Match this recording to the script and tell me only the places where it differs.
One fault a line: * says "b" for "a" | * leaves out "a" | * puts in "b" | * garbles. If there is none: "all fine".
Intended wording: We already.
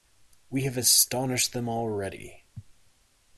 * puts in "have astonished them"